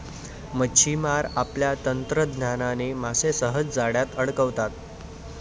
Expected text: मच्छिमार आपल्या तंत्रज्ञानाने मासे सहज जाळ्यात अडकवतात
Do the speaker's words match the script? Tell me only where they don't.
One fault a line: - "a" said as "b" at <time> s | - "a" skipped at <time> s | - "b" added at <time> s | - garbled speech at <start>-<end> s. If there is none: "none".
none